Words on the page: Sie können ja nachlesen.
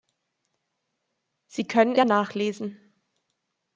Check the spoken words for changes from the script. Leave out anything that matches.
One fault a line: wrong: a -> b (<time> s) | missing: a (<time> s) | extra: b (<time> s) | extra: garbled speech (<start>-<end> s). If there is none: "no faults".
no faults